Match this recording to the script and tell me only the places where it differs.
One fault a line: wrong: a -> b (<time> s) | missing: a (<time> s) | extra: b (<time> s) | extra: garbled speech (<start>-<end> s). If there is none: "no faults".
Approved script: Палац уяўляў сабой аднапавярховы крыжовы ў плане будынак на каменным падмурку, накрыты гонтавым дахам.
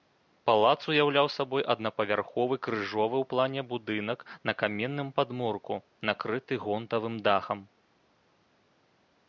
no faults